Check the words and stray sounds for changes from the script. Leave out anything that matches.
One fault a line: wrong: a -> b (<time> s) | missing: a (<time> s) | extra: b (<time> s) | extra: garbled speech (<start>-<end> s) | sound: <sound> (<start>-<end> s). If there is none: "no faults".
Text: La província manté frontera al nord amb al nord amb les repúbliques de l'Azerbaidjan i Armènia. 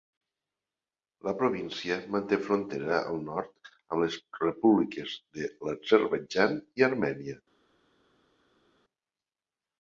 missing: al nord amb (4.0 s)